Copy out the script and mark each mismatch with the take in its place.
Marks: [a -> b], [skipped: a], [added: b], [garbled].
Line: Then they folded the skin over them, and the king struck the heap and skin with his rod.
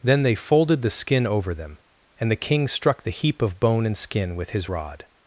Then they folded the skin over them, and the king struck the heap [added: of bone] and skin with his rod.